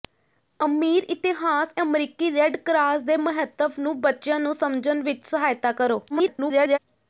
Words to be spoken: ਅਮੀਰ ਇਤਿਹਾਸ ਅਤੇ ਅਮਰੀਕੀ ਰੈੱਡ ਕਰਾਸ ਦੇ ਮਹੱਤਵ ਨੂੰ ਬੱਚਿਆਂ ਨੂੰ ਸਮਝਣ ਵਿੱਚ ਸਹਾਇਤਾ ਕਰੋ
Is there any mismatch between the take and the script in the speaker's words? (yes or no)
yes